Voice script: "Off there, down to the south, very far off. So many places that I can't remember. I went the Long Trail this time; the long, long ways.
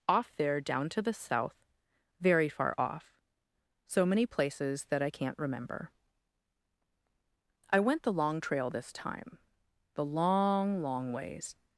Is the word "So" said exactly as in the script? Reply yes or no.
yes